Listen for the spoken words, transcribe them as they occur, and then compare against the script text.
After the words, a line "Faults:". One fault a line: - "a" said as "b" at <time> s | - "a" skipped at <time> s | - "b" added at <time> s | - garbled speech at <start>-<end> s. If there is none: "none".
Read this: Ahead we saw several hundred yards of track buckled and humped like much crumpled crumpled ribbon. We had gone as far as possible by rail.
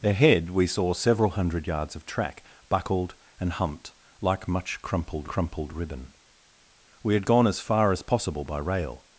Ahead we saw several hundred yards of track buckled and humped like much crumpled crumpled ribbon. We had gone as far as possible by rail.
Faults:
none